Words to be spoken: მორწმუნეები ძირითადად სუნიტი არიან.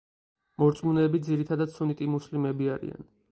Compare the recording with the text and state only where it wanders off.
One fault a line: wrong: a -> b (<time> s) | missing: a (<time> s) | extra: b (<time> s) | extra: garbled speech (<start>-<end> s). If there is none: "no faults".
extra: მუსლიმები (2.1 s)